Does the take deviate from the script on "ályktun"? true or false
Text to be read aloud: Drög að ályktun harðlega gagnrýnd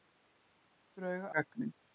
true